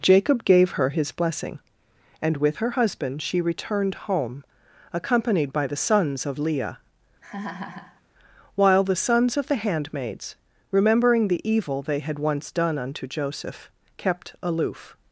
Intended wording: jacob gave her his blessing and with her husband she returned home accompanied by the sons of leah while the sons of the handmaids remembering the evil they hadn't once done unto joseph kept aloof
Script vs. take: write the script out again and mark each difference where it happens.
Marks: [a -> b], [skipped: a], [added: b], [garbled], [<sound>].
jacob gave her his blessing and with her husband she returned home accompanied by the sons of leah [laugh] while the sons of the handmaids remembering the evil they [hadn't -> had] once done unto joseph kept aloof